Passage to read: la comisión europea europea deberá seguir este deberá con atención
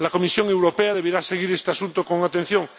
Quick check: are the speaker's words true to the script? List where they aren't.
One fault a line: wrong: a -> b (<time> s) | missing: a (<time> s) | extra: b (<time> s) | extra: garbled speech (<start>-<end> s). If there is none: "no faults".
missing: europea (0.9 s)
wrong: deberá -> asunto (1.7 s)